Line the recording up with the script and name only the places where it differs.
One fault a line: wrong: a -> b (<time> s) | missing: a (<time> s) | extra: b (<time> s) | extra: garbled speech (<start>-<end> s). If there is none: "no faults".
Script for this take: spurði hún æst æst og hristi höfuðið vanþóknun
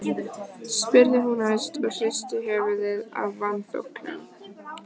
missing: æst (1.8 s)
extra: af (3.2 s)